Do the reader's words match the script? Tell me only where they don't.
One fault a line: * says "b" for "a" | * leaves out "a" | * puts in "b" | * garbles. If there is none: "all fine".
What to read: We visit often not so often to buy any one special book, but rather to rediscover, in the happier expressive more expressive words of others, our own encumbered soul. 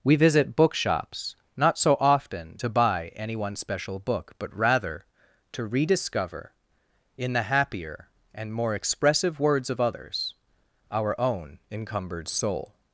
* says "bookshops" for "often"
* says "and" for "expressive"